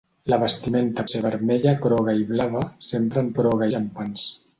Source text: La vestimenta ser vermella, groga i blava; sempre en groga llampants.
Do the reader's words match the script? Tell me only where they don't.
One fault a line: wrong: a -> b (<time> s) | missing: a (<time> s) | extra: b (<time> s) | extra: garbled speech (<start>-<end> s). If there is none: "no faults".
no faults